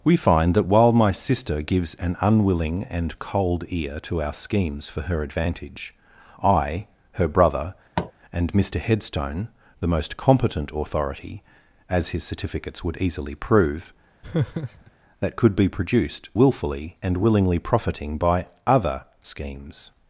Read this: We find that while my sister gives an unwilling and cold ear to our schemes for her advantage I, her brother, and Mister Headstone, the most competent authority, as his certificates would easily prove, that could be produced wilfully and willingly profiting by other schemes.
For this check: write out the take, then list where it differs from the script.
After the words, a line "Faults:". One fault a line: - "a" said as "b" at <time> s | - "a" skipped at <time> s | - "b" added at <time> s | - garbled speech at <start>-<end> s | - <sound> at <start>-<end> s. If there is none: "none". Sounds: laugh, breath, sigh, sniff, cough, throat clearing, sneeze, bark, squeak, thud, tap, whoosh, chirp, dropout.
We find that while my sister gives an unwilling and cold ear to our schemes for her advantage I, her brother, and Mister Headstone, the most competent authority, as his certificates would easily prove, that could be produced wilfully and willingly profiting by other schemes.
Faults:
- tap at 8.0-8.1 s
- laugh at 14.2-14.9 s